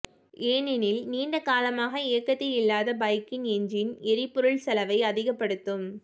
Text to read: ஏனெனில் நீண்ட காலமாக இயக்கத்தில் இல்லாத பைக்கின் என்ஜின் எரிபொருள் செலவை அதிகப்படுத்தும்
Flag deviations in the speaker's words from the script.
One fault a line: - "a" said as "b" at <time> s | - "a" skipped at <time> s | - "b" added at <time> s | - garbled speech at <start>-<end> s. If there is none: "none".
none